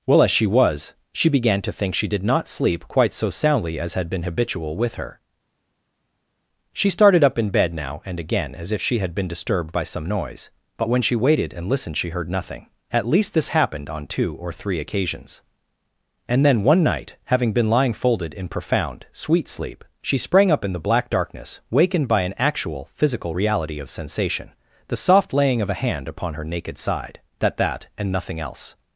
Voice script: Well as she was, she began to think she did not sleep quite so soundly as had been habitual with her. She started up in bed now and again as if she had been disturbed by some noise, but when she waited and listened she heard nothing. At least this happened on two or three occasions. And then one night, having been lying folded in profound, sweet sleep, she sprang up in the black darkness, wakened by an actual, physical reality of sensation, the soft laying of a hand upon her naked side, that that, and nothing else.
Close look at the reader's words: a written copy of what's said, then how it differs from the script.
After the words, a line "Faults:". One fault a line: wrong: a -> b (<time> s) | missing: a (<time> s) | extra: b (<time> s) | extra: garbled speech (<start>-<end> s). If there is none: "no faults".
Well as she was, she began to think she did not sleep quite so soundly as had been habitual with her. She started up in bed now and again as if she had been disturbed by some noise, but when she waited and listened she heard nothing. At least this happened on two or three occasions. And then one night, having been lying folded in profound, sweet sleep, she sprang up in the black darkness, wakened by an actual, physical reality of sensation, the soft laying of a hand upon her naked side, that that, and nothing else.
Faults:
no faults